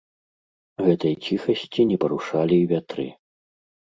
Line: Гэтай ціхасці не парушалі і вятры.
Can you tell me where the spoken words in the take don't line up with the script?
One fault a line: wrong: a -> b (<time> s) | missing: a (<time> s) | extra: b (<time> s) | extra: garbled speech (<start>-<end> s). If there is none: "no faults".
no faults